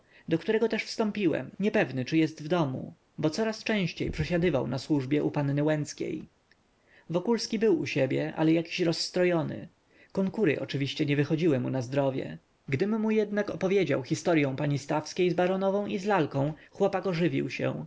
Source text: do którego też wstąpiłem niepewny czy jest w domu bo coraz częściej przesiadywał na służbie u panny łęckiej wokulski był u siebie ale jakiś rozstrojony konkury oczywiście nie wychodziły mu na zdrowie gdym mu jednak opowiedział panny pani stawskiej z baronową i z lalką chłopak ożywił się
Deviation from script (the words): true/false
true